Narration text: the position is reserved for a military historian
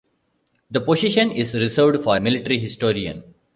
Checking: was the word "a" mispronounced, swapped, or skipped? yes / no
yes